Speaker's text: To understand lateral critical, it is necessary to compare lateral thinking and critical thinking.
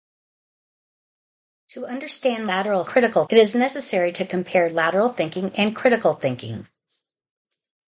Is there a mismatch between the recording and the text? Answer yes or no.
no